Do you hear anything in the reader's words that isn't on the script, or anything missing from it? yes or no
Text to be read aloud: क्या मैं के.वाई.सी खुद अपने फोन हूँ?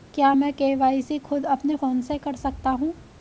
yes